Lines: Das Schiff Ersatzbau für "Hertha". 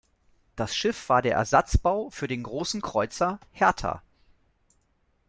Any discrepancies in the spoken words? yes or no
yes